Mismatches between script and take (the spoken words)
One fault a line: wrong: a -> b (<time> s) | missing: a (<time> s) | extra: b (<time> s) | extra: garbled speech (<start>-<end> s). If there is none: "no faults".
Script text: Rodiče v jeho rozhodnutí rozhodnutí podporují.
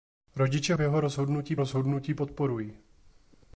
no faults